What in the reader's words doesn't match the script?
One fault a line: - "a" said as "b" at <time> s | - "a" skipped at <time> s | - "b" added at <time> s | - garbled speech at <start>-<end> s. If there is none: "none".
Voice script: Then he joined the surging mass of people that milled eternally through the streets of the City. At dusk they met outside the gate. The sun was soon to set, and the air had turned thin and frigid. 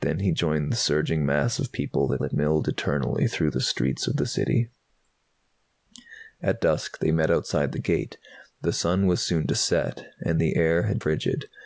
- "that" added at 2.2 s
- "turned thin and" skipped at 11.0 s